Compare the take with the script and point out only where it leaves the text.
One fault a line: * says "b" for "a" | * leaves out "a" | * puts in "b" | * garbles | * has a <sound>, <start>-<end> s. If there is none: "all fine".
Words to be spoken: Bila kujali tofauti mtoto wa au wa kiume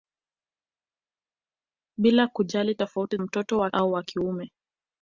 all fine